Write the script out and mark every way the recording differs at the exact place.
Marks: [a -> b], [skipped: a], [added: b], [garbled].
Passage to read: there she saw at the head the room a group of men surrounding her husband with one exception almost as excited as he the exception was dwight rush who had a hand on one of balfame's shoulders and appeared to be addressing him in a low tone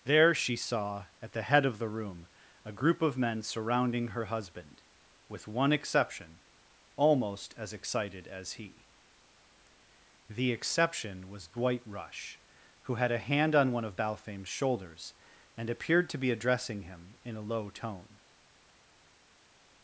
there she saw at the head [added: of] the room a group of men surrounding her husband with one exception almost as excited as he the exception was dwight rush who had a hand on one of balfame's shoulders and appeared to be addressing him in a low tone